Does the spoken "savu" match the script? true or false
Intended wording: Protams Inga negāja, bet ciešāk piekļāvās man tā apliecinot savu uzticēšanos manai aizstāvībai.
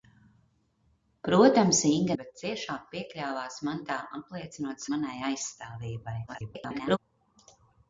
false